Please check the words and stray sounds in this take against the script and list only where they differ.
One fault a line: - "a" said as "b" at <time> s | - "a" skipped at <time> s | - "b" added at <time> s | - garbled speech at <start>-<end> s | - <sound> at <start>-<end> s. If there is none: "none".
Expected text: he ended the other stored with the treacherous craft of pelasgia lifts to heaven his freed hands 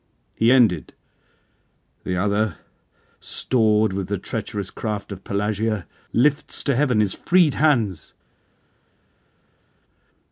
none